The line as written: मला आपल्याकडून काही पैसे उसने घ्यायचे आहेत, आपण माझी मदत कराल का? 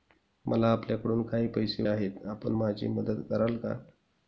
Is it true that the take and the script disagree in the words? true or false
true